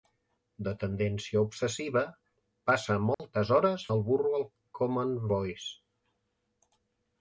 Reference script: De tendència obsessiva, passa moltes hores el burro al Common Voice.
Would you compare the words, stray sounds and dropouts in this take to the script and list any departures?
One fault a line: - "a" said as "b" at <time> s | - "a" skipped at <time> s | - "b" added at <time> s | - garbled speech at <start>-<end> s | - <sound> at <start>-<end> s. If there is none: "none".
- dropout at 3.1-3.2 s